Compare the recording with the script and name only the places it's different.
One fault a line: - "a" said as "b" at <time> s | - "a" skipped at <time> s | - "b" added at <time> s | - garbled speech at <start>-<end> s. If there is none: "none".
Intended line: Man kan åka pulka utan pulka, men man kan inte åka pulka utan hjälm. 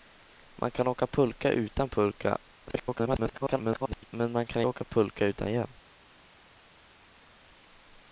- garbled speech at 2.7-4.1 s
- "inte" skipped at 4.6 s